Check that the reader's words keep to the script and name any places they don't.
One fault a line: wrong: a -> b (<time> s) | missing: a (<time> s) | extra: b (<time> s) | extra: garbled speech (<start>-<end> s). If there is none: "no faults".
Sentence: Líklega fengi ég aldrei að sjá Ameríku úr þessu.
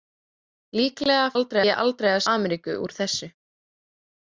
wrong: fengi -> aldrei (1.4 s)
missing: sjá (2.2 s)